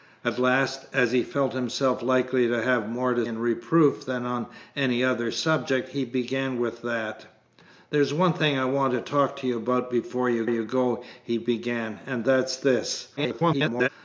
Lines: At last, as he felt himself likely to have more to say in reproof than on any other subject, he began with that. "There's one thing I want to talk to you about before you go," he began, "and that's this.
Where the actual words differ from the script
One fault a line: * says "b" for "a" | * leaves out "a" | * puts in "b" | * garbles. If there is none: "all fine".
* leaves out "say"
* puts in "you"
* garbles